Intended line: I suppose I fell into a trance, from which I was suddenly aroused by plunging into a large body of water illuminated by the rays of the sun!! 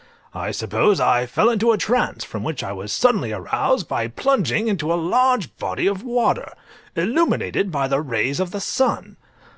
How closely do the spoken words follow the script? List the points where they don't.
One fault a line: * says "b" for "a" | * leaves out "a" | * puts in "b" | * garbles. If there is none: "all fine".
all fine